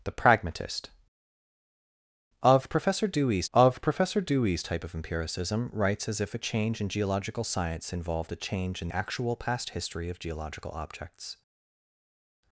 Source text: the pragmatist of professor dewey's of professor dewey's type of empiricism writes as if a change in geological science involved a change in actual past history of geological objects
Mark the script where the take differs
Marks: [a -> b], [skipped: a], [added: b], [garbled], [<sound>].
the pragmatist of professor dewey's of professor dewey's type of empiricism writes as if a change in geological science involved a change in actual past history of geological objects